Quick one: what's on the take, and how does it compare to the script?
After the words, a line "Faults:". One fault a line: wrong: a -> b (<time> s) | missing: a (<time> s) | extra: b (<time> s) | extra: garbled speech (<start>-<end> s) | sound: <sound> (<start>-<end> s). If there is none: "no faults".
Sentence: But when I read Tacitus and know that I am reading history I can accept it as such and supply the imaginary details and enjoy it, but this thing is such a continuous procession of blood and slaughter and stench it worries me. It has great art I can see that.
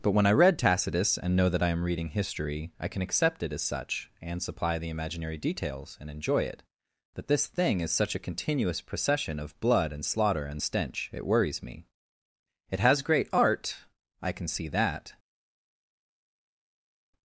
But when I read Tacitus and know that I am reading history I can accept it as such and supply the imaginary details and enjoy it, that this thing is such a continuous procession of blood and slaughter and stench it worries me. It has great art I can see that.
Faults:
wrong: but -> that (7.2 s)